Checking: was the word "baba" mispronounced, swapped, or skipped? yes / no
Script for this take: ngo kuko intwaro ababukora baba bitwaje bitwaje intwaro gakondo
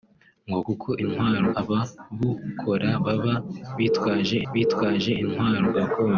no